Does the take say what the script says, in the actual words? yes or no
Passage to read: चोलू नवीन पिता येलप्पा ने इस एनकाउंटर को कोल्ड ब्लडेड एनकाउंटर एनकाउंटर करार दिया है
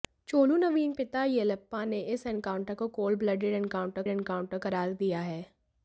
yes